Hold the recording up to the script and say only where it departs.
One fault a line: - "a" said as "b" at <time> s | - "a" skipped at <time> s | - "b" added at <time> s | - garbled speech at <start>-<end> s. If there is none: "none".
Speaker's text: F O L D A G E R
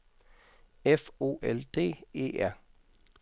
- "A G" skipped at 2.0 s